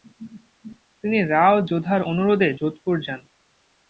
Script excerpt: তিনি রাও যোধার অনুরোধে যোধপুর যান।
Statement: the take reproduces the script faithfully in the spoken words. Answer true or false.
true